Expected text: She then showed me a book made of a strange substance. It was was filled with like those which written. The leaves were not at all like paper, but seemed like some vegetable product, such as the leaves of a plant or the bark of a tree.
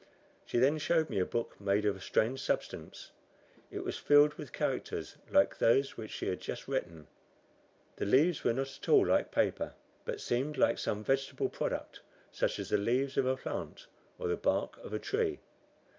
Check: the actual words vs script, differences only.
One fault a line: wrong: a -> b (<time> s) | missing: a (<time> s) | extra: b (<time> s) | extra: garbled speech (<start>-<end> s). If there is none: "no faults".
missing: was (4.0 s)
extra: characters (4.5 s)
extra: she had just (6.1 s)